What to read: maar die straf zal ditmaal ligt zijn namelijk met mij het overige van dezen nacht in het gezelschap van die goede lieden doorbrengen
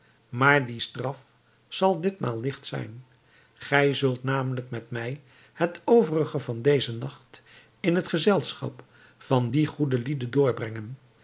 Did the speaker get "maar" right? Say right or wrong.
right